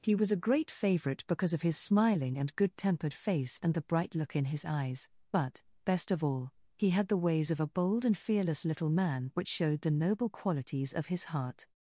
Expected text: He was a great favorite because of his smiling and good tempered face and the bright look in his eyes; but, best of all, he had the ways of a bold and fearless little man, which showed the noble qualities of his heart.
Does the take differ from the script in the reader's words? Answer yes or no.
no